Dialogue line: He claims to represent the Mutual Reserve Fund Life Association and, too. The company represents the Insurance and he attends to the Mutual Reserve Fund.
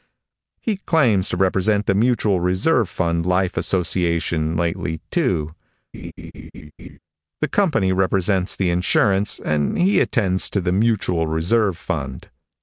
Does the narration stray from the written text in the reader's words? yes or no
yes